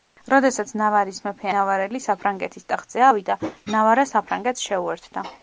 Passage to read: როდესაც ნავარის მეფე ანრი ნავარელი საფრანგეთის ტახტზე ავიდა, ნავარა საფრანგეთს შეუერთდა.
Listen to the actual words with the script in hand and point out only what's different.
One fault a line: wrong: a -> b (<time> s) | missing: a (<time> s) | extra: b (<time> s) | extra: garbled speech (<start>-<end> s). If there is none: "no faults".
missing: ანრი (1.5 s)